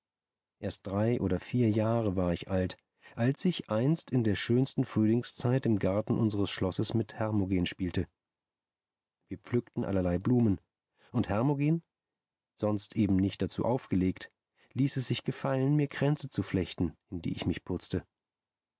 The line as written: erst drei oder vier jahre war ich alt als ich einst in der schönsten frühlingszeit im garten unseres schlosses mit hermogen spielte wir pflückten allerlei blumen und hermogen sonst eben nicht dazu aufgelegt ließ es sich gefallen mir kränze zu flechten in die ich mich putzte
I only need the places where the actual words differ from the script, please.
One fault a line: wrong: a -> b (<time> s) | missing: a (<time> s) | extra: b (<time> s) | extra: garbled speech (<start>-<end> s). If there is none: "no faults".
no faults